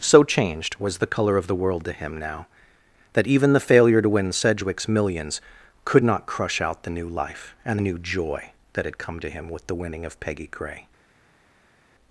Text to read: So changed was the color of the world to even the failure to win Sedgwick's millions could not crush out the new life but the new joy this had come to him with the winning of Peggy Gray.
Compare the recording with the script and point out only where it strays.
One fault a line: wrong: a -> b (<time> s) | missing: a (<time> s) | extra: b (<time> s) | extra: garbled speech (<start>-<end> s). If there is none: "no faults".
extra: him now that (1.9 s)
wrong: but -> and (7.7 s)
wrong: this -> that (8.7 s)